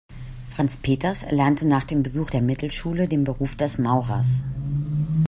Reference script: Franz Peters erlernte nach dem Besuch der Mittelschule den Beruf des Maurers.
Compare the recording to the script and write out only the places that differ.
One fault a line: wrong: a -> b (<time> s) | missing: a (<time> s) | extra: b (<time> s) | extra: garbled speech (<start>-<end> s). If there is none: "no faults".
no faults